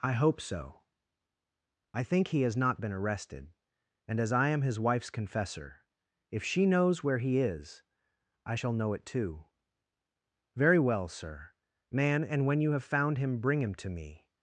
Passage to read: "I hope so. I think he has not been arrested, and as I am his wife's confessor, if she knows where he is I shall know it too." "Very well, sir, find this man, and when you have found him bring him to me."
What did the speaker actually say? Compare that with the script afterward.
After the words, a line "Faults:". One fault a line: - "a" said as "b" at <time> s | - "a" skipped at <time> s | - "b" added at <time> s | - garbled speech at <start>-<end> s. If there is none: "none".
"I hope so. I think he has not been arrested, and as I am his wife's confessor, if she knows where he is I shall know it too." "Very well, sir, man, and when you have found him bring him to me."
Faults:
- "find this" skipped at 11.5 s